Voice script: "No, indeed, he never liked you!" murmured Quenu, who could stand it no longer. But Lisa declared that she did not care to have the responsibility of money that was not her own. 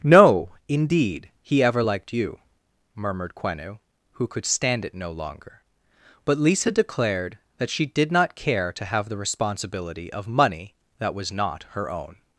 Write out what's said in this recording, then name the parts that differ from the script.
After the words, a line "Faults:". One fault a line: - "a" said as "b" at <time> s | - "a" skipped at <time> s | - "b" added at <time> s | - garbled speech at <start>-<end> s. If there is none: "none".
"No, indeed, he ever liked you!" murmured Quenu, who could stand it no longer. But Lisa declared that she did not care to have the responsibility of money that was not her own.
Faults:
- "never" said as "ever" at 1.6 s